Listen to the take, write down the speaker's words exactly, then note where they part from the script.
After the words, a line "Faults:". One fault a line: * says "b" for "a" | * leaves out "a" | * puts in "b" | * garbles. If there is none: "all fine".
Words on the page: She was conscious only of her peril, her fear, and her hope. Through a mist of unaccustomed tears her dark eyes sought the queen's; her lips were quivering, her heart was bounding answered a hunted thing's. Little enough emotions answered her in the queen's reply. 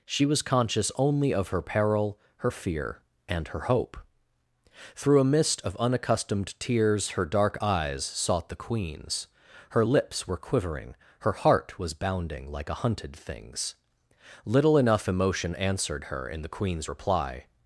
She was conscious only of her peril, her fear, and her hope. Through a mist of unaccustomed tears her dark eyes sought the queen's; her lips were quivering, her heart was bounding like a hunted thing's. Little enough emotion answered her in the queen's reply.
Faults:
* says "like" for "answered"
* says "emotion" for "emotions"